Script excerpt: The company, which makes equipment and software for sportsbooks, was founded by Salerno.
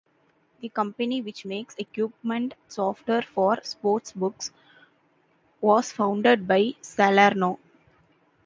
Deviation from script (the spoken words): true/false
true